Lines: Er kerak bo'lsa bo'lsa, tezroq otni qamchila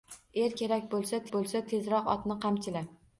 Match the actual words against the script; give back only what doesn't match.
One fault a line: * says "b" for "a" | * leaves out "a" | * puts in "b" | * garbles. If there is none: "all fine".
all fine